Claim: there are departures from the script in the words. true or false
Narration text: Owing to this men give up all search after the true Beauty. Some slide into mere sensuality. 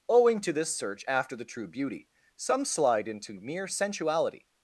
true